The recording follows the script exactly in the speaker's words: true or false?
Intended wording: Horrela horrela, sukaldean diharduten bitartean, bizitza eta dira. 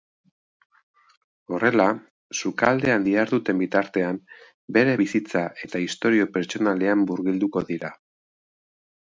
false